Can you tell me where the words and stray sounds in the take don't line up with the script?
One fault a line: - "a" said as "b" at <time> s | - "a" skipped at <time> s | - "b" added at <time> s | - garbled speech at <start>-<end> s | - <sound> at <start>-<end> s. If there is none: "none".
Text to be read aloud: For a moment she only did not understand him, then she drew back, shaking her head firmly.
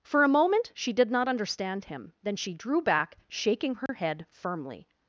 - "only" skipped at 0.9 s
- dropout at 3.9-3.9 s